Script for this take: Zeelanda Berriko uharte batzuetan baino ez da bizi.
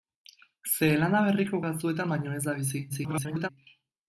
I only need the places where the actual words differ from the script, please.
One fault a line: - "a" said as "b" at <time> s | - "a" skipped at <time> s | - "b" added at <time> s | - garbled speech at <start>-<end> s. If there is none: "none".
- "uharte" skipped at 1.6 s
- garbled speech at 2.9-3.5 s